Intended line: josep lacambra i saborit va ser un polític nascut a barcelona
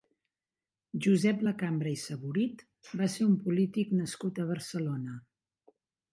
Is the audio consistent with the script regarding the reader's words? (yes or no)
yes